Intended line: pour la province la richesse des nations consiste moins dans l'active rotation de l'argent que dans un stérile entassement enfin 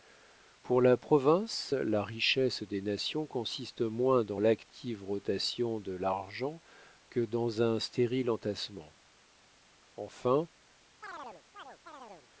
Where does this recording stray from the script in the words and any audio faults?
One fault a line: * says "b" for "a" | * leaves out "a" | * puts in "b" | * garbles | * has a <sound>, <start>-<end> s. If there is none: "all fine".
* has a chirp, 11.0-12.3 s